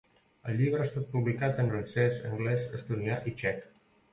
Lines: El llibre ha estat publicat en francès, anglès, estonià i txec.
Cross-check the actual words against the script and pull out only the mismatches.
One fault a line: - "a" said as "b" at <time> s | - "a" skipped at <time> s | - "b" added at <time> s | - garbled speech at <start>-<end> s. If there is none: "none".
none